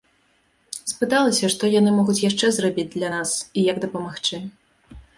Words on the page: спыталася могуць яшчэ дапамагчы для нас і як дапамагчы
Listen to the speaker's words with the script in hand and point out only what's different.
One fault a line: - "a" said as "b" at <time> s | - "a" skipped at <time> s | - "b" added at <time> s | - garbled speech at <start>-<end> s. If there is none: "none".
- "што яны" added at 1.6 s
- "дапамагчы" said as "зрабіць" at 2.6 s